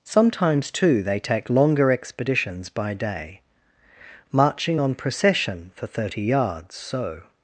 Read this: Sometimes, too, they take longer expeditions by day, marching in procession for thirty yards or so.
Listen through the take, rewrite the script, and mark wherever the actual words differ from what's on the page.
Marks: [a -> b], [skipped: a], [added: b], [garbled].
Sometimes, too, they take longer expeditions by day, marching [in -> on] procession for thirty yards [skipped: or] so.